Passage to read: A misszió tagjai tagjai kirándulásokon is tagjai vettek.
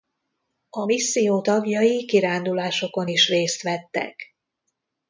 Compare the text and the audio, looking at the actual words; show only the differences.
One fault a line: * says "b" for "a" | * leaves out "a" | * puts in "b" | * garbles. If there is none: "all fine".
* leaves out "tagjai"
* says "részt" for "tagjai"